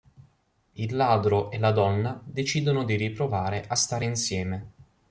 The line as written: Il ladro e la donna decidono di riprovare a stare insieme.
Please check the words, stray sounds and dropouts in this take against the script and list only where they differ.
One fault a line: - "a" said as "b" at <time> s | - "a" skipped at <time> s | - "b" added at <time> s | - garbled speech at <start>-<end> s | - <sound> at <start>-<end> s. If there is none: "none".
none